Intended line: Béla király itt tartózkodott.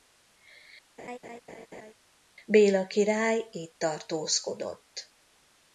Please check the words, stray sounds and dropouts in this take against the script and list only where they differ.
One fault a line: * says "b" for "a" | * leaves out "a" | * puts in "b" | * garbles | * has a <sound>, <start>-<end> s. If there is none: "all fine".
* has a laugh, 1.0-1.9 s